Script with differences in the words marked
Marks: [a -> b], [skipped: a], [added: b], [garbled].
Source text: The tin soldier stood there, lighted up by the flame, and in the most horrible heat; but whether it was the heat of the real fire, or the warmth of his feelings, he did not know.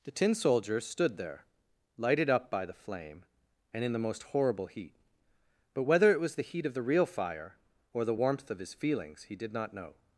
The tin soldier stood there, lighted up by the flame, and in the most horrible heat; but whether it was the heat of the real fire, or the warmth of his feelings, he did not know.